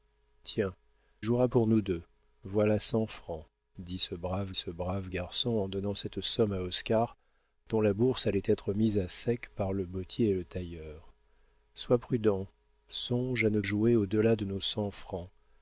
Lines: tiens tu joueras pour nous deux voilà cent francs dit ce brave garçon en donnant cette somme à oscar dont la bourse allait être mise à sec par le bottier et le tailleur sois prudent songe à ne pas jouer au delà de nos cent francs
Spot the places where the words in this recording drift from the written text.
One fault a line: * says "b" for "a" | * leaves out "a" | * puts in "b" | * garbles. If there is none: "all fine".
* leaves out "tu"
* puts in "ce brave"
* leaves out "pas"